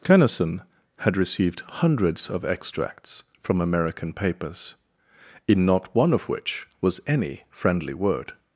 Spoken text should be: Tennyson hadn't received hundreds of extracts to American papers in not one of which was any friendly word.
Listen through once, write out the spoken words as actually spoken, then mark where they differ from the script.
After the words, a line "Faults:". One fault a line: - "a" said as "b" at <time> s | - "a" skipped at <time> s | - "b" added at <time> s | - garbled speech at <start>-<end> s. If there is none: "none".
Tennyson had received hundreds of extracts from American papers in not one of which was any friendly word.
Faults:
- "hadn't" said as "had" at 1.0 s
- "to" said as "from" at 3.4 s